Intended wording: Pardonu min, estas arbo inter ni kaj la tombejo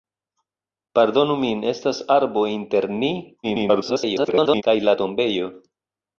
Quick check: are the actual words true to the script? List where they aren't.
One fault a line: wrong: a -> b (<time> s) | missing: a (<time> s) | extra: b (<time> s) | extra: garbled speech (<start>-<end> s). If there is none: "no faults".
extra: garbled speech (3.4-4.6 s)